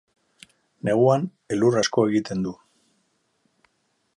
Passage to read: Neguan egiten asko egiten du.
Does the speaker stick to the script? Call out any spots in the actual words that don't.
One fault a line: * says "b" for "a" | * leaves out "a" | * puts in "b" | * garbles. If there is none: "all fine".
* says "elur" for "egiten"